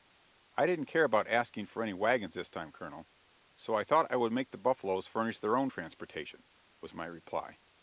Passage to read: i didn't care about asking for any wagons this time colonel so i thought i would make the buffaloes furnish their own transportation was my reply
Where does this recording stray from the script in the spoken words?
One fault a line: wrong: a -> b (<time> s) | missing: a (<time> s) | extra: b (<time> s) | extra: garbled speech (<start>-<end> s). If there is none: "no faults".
no faults